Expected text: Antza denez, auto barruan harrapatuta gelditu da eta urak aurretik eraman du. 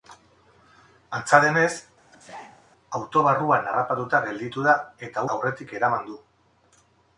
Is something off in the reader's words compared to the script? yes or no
yes